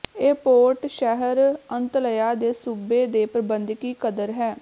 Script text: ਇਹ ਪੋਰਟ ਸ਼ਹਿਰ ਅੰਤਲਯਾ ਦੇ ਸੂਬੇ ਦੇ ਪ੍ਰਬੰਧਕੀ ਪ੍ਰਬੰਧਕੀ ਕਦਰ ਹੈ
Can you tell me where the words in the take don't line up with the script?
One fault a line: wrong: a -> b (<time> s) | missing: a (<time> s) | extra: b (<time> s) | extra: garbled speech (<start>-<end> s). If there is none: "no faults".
missing: ਪ੍ਰਬੰਧਕੀ (3.9 s)